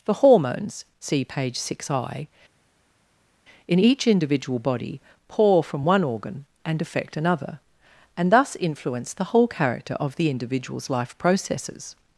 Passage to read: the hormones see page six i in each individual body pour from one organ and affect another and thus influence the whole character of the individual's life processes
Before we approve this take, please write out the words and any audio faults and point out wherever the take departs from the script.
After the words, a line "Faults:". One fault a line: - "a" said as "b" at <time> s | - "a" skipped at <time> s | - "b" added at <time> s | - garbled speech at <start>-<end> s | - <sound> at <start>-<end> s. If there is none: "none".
the hormones see page six i in each individual body pour from one organ and affect another and thus influence the whole character of the individual's life processes
Faults:
none